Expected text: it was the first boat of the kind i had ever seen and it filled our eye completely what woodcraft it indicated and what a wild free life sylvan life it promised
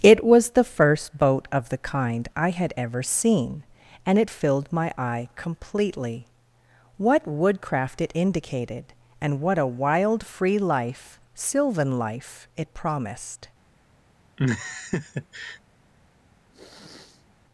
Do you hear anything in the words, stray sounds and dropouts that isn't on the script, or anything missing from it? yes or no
yes